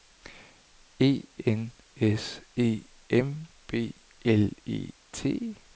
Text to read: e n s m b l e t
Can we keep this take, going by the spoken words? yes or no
no